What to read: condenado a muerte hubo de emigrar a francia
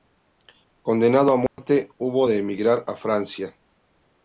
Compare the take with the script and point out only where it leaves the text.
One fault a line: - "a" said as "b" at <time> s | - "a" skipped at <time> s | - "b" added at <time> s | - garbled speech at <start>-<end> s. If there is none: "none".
none